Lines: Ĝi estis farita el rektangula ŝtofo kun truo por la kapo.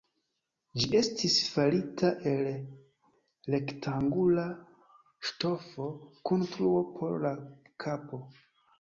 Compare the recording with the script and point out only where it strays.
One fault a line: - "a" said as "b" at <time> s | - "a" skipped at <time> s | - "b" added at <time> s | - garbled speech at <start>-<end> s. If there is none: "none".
none